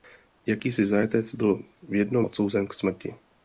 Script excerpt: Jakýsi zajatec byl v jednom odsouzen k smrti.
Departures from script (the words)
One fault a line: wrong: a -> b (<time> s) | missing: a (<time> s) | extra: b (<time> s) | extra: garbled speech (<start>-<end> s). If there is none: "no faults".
no faults